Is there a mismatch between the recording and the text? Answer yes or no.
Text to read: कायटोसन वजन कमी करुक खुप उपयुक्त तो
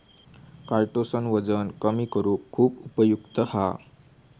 yes